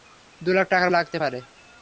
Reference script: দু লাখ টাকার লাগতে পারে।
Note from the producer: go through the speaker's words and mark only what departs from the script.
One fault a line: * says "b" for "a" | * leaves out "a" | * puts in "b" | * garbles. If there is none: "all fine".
all fine